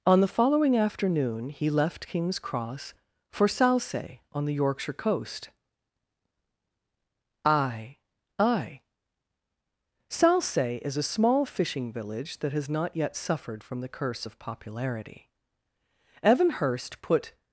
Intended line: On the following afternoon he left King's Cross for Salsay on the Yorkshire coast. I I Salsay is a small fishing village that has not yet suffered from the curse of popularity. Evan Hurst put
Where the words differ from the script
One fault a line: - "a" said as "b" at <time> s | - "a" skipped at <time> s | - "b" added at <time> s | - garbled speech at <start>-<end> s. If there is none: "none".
none